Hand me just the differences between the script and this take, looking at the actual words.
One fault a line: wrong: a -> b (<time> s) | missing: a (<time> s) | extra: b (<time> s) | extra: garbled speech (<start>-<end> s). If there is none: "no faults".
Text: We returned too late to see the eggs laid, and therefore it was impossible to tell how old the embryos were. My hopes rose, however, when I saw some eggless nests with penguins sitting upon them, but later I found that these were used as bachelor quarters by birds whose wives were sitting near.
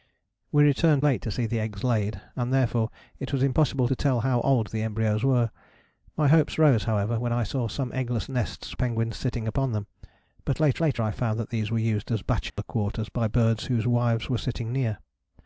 missing: too (1.0 s)
missing: with (8.8 s)
extra: later (10.8 s)